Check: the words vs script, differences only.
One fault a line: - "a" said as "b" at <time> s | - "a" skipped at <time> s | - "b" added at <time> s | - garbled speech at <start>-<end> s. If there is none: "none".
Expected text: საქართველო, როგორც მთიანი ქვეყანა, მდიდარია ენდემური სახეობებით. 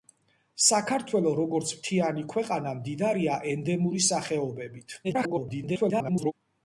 - garbled speech at 5.0-6.3 s